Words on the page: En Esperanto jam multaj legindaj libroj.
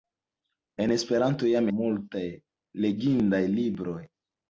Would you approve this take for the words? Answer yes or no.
yes